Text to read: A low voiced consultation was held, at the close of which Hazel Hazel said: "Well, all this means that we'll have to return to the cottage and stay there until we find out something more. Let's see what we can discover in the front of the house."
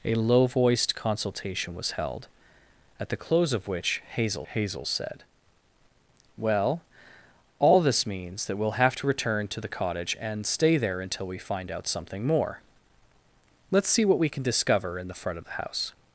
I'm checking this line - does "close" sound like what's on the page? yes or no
yes